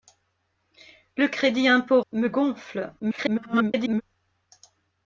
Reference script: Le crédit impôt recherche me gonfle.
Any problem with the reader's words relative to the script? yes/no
yes